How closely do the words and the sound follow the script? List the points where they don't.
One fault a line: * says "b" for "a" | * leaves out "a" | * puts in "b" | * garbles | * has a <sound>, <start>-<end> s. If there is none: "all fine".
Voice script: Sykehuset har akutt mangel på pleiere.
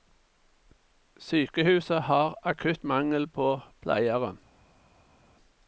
all fine